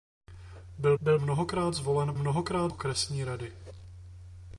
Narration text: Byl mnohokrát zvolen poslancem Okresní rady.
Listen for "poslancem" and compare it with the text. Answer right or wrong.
wrong